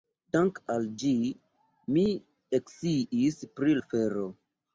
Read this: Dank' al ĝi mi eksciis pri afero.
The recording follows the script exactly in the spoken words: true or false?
true